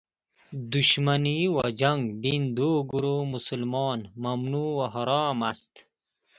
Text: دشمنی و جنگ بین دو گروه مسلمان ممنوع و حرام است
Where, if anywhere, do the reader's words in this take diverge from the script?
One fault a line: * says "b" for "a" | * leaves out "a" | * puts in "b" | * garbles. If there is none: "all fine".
all fine